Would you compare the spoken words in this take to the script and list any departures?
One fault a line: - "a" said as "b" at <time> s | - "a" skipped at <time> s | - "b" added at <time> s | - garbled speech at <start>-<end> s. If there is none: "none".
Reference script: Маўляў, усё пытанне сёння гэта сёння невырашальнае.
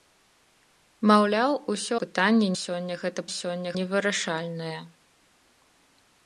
none